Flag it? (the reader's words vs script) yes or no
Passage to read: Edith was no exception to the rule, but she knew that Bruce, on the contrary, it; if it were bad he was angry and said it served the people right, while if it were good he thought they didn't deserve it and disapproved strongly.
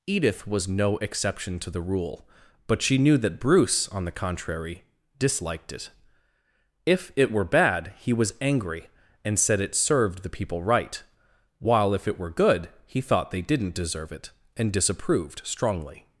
yes